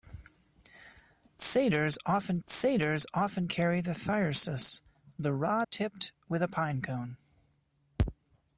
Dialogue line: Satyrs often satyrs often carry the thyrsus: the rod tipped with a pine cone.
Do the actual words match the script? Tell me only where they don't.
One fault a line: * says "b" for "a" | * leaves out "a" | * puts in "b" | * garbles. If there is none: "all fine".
all fine